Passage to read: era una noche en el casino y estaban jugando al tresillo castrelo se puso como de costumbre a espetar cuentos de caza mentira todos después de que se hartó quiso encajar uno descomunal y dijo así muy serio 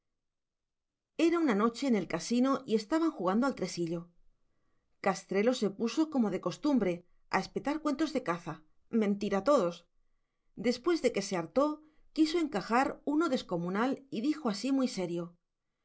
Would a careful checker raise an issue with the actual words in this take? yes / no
no